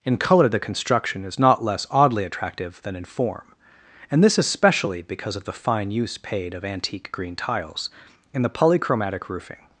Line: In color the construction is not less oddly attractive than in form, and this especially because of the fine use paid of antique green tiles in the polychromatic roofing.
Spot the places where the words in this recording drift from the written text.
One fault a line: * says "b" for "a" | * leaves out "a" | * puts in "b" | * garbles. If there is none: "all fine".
all fine